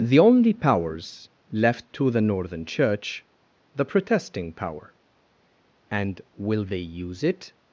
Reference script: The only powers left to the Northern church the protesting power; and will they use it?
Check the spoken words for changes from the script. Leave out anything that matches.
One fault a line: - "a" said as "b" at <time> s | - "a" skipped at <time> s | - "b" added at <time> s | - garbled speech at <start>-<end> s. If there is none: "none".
none